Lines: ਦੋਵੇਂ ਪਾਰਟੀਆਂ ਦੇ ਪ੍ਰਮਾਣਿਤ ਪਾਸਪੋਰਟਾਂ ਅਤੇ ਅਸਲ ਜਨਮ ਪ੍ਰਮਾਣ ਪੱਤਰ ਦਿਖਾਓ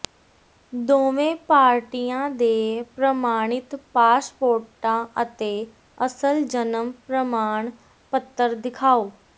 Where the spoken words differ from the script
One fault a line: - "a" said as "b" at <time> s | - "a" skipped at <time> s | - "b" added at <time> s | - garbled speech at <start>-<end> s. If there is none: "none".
none